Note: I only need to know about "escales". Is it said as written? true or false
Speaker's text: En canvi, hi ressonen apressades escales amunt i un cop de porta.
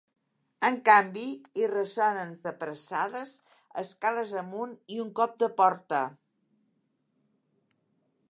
true